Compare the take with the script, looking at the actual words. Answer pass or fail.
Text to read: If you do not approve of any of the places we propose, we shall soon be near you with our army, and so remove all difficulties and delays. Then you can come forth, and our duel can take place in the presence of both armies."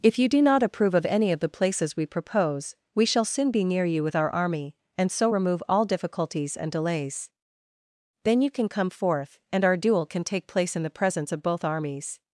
pass